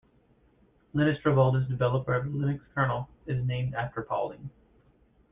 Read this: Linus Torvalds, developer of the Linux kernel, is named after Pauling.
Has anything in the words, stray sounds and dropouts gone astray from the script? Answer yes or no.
no